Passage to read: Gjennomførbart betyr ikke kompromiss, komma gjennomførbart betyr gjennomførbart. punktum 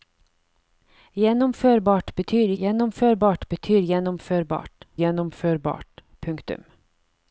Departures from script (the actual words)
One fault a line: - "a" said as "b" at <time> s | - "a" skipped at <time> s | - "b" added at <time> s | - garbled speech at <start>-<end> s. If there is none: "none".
- "ikke kompromiss komma" said as "gjennomførbart betyr" at 2.6 s
- "betyr" skipped at 4.7 s